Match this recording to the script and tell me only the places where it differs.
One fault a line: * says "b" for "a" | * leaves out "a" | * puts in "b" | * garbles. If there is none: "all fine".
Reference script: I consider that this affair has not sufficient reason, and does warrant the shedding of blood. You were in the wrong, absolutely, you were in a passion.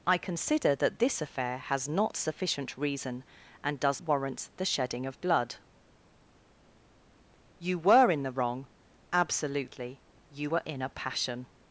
all fine